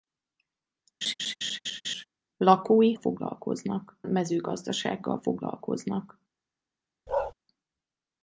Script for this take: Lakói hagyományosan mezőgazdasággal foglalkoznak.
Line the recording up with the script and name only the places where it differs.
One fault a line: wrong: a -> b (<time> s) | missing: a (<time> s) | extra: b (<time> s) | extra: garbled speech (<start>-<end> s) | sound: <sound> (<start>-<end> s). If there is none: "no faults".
sound: laugh (1.0-2.0 s)
wrong: hagyományosan -> foglalkoznak (2.9 s)
sound: bark (7.1-7.3 s)